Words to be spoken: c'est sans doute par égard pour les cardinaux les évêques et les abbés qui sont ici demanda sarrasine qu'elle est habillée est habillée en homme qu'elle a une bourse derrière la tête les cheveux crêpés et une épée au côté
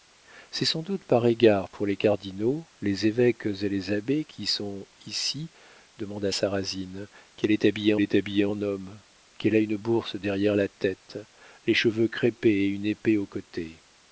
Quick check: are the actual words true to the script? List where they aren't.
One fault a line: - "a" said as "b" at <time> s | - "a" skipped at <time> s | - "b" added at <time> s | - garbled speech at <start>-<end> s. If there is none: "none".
none